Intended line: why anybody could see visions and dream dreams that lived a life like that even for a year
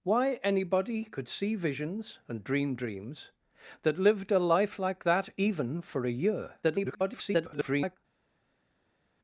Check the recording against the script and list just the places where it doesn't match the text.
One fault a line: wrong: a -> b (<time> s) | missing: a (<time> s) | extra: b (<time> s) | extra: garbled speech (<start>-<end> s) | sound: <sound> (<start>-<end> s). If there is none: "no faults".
extra: garbled speech (6.6-8.0 s)